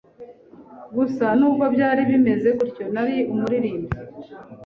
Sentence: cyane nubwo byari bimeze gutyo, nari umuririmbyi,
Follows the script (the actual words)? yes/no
no